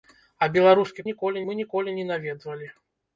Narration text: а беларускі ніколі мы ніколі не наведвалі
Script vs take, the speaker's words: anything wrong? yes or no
no